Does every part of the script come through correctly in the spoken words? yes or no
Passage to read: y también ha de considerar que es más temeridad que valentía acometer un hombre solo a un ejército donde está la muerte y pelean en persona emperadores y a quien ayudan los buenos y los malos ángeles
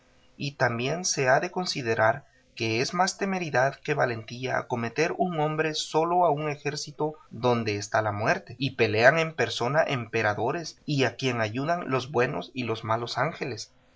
no